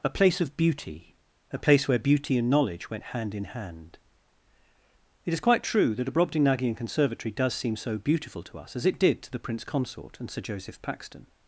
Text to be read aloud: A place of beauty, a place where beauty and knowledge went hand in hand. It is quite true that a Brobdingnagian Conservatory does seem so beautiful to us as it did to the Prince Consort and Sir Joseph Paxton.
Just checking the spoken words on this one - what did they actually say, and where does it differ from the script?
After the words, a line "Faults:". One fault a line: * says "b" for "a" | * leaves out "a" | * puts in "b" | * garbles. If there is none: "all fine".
A place of beauty, a place where beauty and knowledge went hand in hand. It is quite true that a Brobdingnagian Conservatory does seem so beautiful to us as it did to the Prince Consort and Sir Joseph Paxton.
Faults:
all fine